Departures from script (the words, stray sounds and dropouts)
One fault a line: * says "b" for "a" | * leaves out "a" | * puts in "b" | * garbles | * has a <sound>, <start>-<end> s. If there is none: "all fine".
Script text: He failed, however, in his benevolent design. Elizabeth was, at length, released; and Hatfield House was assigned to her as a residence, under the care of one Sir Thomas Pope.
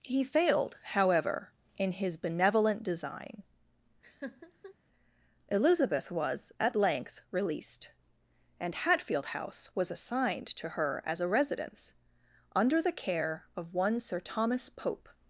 * has a laugh, 4.0-4.7 s